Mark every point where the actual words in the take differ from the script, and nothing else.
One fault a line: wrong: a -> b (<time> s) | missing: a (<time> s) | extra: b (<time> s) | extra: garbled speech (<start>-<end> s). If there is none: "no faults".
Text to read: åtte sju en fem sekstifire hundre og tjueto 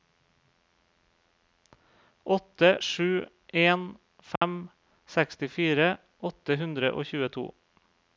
extra: åtte (6.3 s)